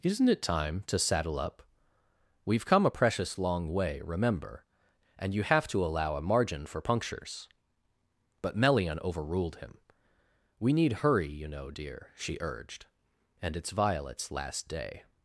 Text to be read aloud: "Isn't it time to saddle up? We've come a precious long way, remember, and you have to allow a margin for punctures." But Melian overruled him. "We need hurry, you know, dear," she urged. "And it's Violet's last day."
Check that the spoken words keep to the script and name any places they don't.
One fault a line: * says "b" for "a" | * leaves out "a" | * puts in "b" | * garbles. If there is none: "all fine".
all fine